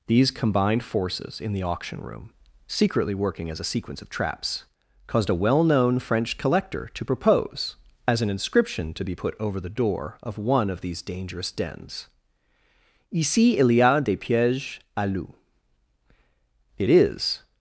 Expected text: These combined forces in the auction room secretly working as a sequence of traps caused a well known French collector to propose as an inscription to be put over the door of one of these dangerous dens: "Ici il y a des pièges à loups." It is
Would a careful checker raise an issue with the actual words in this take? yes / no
no